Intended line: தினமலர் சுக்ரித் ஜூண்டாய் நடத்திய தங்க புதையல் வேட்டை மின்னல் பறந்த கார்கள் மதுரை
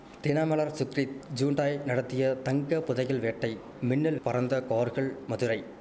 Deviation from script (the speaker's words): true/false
false